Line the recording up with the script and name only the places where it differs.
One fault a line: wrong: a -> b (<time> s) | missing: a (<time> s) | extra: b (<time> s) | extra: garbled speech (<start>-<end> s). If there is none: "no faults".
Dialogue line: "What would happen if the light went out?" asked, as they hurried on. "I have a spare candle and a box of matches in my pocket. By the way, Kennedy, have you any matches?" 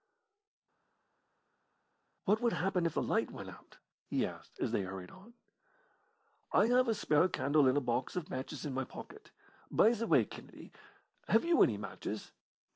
extra: he (4.1 s)